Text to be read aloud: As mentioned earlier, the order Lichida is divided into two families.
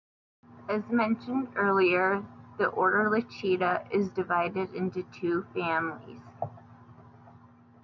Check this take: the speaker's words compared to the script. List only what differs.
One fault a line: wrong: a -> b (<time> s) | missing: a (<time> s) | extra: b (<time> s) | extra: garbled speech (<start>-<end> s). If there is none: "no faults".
no faults